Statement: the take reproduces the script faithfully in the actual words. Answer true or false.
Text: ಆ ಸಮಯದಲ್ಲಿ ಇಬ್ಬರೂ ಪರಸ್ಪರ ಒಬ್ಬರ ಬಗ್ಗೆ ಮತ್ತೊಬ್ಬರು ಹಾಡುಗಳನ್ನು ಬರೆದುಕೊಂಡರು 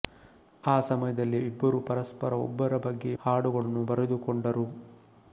false